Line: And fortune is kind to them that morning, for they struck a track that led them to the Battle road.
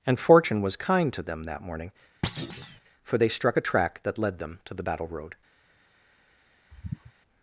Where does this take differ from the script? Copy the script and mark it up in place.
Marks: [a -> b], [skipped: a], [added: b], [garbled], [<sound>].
And fortune [is -> was] kind to them that morning, [thud] for they struck a track that led them to the Battle road. [sigh]